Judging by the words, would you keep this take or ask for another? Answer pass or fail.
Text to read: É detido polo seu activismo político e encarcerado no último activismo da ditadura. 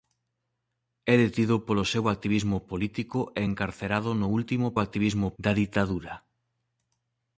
pass